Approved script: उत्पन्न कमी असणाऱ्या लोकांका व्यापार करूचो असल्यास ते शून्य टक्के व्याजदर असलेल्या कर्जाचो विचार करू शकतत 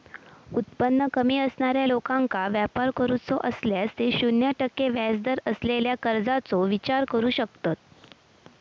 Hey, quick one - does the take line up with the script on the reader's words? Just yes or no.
yes